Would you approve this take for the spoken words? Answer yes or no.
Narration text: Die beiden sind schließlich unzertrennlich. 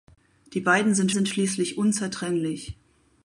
no